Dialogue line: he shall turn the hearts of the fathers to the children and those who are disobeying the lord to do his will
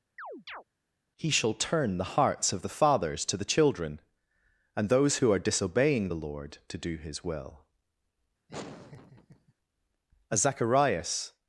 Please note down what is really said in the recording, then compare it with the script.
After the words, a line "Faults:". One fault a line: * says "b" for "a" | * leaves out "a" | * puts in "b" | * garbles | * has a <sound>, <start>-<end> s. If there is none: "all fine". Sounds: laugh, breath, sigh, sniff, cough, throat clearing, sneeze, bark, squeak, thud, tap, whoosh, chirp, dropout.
he shall turn the hearts of the fathers to the children and those who are disobeying the lord to do his will as zacharias
Faults:
* has a chirp, 0.2-0.6 s
* has a laugh, 8.5-9.5 s
* puts in "as zacharias"